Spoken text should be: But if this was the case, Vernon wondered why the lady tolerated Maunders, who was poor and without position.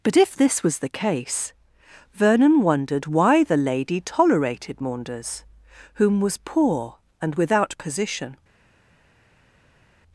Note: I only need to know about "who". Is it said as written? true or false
false